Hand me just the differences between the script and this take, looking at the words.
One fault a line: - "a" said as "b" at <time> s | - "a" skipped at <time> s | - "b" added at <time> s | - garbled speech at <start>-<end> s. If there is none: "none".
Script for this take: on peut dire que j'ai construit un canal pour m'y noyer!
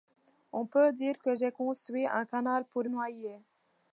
- "m'y" skipped at 2.8 s